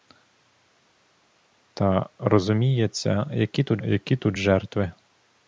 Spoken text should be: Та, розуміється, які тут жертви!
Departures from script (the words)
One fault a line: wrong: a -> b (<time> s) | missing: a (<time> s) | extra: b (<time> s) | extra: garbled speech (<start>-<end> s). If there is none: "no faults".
extra: які тут (3.8 s)